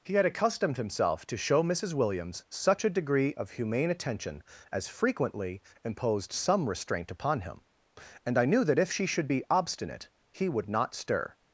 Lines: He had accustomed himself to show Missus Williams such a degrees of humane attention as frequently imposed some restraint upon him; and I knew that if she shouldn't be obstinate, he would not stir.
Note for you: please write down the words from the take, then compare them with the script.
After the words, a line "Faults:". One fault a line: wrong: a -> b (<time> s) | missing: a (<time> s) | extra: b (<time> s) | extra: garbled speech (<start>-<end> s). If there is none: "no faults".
He had accustomed himself to show Missus Williams such a degree of humane attention as frequently imposed some restraint upon him; and I knew that if she should be obstinate, he would not stir.
Faults:
wrong: degrees -> degree (2.9 s)
wrong: shouldn't -> should (9.1 s)